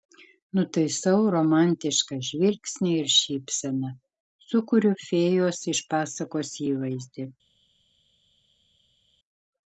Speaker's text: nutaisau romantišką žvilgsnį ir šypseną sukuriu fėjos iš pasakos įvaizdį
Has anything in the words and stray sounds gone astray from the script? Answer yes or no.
no